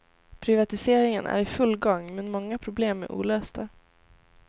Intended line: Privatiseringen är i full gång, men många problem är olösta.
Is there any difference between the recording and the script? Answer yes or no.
no